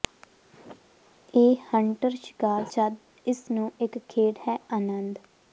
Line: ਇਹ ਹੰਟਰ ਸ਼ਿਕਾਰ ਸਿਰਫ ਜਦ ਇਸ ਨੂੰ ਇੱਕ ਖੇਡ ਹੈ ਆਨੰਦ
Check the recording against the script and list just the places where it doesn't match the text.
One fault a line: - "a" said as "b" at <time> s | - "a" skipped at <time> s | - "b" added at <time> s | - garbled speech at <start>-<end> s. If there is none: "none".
- "ਸਿਰਫ" skipped at 2.6 s